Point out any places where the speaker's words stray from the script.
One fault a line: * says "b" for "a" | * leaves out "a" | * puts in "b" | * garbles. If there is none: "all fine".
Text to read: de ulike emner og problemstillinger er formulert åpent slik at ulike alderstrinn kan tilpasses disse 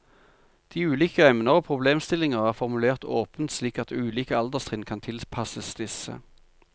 all fine